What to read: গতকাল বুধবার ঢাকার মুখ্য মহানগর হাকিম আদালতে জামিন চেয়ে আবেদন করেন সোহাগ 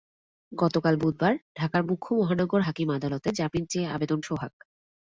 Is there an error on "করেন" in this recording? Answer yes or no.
yes